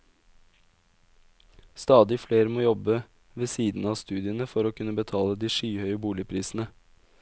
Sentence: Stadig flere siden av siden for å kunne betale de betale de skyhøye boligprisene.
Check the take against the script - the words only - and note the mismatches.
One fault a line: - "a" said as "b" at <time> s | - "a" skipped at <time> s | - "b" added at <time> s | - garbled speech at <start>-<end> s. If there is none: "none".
- "må jobbe ved" added at 2.5 s
- "siden" said as "studiene" at 4.0 s
- "betale de" skipped at 5.5 s